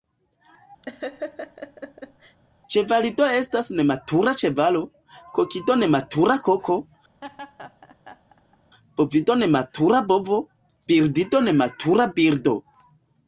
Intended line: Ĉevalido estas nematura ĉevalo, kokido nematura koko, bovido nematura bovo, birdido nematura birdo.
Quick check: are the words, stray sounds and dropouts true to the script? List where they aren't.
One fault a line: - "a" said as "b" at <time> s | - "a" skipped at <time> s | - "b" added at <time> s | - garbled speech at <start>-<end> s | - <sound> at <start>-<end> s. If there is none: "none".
- laugh at 0.8-2.4 s
- laugh at 7.2-8.6 s